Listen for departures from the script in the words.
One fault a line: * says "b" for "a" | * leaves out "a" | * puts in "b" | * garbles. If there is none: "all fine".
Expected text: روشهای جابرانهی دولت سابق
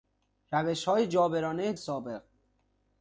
* leaves out "دولت"